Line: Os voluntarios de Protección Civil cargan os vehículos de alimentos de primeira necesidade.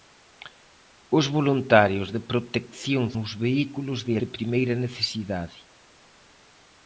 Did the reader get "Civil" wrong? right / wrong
wrong